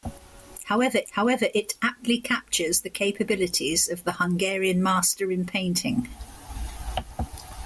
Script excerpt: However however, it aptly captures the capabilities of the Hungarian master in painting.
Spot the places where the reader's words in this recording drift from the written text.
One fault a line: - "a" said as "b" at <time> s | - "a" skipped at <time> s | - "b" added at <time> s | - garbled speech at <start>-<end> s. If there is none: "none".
none